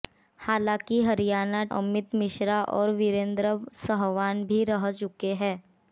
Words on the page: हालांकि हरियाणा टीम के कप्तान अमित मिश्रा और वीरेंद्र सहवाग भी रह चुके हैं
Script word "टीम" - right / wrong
wrong